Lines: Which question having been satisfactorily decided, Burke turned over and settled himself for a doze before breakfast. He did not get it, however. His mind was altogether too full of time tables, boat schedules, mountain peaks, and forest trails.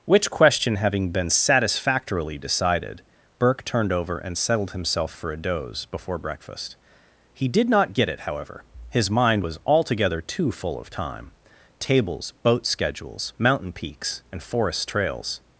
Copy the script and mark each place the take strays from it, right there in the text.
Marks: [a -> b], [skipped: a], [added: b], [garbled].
Which question having been satisfactorily decided, Burke turned over and settled himself for a doze before breakfast. He did not get it, however. His mind was altogether too full of time tables, boat schedules, mountain peaks, and forest trails.